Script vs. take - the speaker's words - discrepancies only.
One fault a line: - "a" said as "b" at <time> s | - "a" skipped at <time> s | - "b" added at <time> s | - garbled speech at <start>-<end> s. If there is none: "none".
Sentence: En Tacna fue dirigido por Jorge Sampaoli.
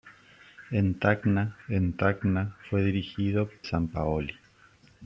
- "en Tacna" added at 1.7 s
- "por Jorge" skipped at 3.5 s